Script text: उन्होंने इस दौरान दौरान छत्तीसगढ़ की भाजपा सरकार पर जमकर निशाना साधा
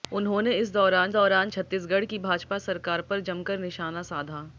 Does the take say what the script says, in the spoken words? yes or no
yes